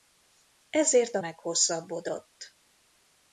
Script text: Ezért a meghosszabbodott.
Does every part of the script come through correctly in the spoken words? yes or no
yes